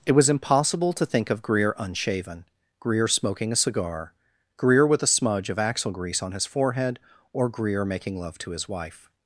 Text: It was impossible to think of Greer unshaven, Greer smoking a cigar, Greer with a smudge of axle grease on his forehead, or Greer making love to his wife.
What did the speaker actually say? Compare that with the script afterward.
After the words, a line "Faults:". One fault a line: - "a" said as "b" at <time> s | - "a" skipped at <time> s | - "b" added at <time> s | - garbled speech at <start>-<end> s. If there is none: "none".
It was impossible to think of Greer unshaven, Greer smoking a cigar, Greer with a smudge of axle grease on his forehead, or Greer making love to his wife.
Faults:
none